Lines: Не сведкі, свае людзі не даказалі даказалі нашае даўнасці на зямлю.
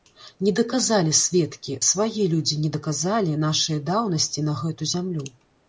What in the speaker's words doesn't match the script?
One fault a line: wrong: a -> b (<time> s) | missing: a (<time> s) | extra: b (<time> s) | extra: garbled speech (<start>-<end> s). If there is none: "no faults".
extra: даказалі (0.6 s)
missing: даказалі (3.4 s)
extra: гэту (4.7 s)